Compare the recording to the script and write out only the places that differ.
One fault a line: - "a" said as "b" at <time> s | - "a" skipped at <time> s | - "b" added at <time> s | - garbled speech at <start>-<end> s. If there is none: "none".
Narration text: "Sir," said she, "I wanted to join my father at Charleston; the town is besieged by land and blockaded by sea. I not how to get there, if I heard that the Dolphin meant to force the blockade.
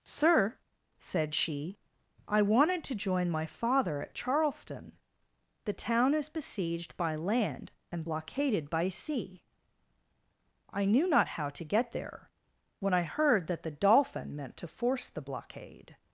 - "knew" added at 10.9 s
- "if" said as "when" at 12.8 s